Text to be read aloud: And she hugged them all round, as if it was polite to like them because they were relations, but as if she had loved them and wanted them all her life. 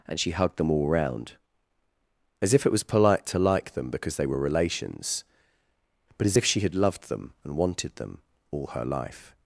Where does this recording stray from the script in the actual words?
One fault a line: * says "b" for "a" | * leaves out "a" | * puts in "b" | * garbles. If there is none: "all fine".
all fine